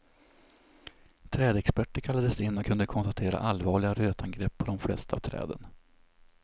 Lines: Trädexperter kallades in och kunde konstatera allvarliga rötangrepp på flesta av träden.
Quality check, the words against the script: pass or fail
fail